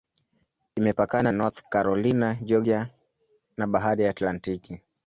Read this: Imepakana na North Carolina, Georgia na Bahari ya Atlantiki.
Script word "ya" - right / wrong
right